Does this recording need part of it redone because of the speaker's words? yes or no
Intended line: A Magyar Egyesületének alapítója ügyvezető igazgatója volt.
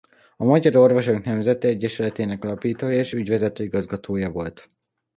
yes